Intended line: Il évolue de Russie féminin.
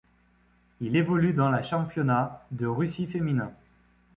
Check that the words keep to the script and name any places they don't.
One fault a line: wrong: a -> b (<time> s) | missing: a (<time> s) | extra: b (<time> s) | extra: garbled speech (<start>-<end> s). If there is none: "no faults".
extra: dans la Championnat (1.3 s)